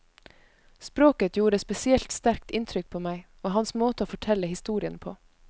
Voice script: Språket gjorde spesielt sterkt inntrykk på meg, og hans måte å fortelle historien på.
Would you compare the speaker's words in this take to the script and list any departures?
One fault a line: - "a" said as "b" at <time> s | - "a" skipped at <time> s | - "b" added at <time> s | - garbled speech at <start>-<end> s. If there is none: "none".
none